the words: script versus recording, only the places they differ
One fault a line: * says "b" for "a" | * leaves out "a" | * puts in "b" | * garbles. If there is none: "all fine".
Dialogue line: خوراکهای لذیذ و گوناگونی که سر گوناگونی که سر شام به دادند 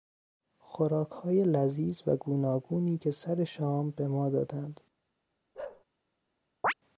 * leaves out "گوناگونی که سر"
* puts in "ما"